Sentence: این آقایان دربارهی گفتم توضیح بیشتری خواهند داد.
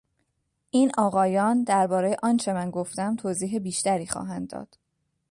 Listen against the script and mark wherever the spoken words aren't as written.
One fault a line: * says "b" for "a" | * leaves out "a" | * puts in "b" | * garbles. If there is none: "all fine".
* puts in "آنچه من"